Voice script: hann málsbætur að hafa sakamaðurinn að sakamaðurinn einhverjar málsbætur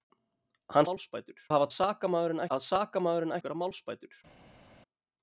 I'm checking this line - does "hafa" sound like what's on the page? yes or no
yes